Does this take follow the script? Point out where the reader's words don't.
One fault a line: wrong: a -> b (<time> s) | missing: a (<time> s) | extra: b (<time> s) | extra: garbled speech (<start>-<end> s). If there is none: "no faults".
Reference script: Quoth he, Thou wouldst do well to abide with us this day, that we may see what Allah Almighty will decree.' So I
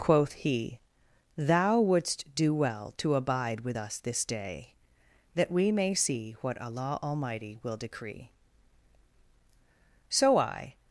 no faults